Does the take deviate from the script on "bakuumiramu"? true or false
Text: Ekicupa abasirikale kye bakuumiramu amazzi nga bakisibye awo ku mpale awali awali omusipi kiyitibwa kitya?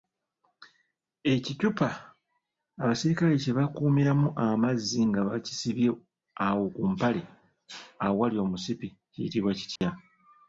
false